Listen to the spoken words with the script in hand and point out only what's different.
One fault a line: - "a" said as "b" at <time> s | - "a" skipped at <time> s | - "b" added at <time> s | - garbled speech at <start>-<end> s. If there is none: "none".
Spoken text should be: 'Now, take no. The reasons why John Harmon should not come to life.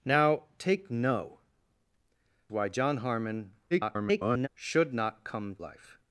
- "The reasons" skipped at 1.4 s
- garbled speech at 3.7-4.5 s
- "to" skipped at 5.6 s